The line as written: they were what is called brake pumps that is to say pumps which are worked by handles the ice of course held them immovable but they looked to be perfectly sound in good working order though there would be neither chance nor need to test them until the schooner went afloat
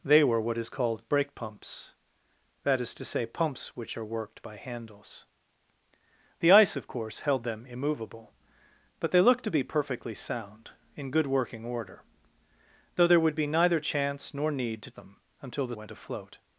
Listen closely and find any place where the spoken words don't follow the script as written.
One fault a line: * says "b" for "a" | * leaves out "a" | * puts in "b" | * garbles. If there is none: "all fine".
* leaves out "test"
* leaves out "schooner"